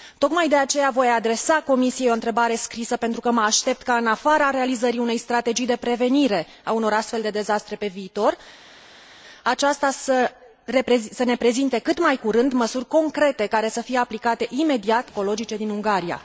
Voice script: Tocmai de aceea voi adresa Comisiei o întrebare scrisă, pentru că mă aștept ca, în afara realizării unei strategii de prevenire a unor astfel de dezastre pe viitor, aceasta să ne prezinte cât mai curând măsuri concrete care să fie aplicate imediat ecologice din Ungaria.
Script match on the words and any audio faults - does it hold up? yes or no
yes